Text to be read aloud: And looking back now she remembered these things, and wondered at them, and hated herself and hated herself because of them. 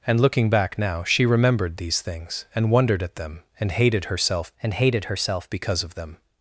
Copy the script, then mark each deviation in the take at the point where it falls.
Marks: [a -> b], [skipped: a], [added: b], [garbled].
And looking back now she remembered these things, and wondered at them, and hated herself and hated herself because of them.